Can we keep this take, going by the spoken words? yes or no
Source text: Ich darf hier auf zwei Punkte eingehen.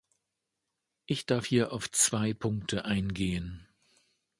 yes